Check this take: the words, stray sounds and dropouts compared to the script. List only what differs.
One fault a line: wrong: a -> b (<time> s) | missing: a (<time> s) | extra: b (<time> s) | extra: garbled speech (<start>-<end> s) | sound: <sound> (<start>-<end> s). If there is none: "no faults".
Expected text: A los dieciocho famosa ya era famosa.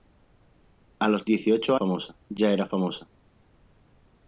no faults